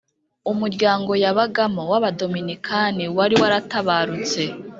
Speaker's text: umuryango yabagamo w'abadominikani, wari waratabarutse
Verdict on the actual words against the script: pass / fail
pass